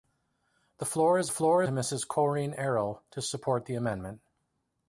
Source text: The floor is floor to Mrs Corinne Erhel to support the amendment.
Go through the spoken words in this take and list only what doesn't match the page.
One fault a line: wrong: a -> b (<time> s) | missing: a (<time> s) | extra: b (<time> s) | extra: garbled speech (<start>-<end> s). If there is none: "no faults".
no faults